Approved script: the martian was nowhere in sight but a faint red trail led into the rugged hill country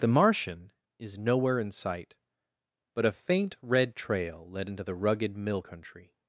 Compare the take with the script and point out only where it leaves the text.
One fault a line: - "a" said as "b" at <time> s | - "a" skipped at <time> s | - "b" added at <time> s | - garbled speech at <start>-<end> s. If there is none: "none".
- "was" said as "is" at 1.0 s
- "hill" said as "mill" at 5.3 s